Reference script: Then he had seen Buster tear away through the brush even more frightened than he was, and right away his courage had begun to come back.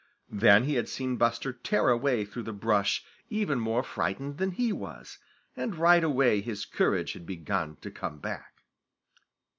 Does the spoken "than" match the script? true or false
true